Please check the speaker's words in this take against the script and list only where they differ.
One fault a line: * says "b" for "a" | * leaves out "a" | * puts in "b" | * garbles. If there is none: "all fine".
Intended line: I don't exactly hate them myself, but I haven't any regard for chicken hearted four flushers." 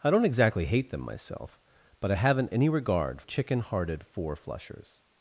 * leaves out "for"